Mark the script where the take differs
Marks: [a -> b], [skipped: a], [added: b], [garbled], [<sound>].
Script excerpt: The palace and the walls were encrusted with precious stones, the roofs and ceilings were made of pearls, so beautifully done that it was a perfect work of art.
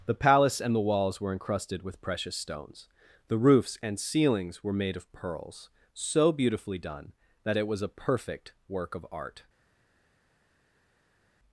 The palace and the walls were encrusted with precious stones, the roofs and ceilings were made of pearls, so beautifully done that it was a perfect work of art.